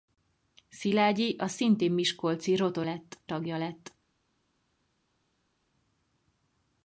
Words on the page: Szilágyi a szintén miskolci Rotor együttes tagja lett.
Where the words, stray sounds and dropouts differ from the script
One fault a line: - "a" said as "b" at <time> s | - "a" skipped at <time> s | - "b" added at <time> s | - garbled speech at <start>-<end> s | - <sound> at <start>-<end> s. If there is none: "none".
- "együttes" said as "lett" at 2.8 s